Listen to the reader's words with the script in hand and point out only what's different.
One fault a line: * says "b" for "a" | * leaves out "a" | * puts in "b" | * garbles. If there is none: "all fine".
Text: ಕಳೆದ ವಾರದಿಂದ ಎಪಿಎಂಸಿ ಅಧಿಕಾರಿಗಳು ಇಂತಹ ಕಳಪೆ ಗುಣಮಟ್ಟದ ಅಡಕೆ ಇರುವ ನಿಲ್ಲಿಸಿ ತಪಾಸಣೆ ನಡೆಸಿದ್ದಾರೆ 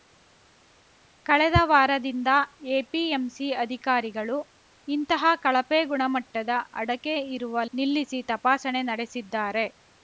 all fine